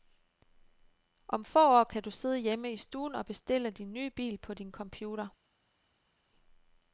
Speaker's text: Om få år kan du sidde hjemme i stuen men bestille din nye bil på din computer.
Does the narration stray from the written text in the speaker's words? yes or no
yes